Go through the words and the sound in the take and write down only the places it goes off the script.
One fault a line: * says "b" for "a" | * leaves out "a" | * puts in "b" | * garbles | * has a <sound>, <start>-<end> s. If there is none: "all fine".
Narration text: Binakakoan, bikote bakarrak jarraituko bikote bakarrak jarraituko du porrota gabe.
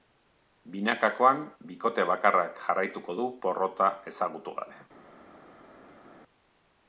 * leaves out "bikote bakarrak jarraituko"
* puts in "ezagutu"